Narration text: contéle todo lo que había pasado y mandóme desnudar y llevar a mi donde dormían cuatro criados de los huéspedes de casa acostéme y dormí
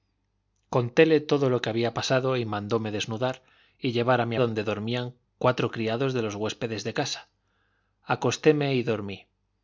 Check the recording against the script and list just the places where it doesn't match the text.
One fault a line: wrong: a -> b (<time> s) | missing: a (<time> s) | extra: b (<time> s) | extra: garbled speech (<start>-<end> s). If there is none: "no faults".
no faults